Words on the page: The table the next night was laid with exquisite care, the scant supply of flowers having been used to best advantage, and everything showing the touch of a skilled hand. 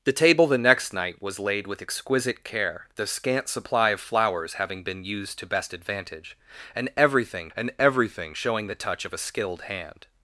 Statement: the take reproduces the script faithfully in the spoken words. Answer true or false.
false